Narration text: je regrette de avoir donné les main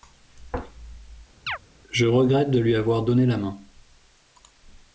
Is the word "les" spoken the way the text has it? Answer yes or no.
no